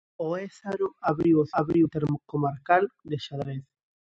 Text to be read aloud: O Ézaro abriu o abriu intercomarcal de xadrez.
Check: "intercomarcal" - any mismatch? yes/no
no